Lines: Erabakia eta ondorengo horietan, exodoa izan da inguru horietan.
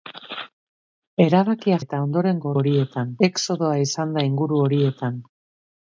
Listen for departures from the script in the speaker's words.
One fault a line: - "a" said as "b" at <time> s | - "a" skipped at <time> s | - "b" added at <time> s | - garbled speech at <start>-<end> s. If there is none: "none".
none